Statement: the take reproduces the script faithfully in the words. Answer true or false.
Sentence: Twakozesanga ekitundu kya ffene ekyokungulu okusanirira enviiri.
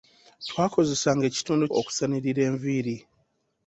false